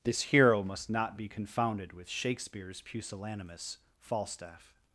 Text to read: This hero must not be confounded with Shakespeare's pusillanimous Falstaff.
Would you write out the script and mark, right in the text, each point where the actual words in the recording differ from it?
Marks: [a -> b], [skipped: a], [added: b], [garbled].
This hero must not be confounded with Shakespeare's pusillanimous Falstaff.